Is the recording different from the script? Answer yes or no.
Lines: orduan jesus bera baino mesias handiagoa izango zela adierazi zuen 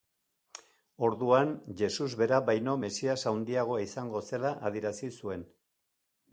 no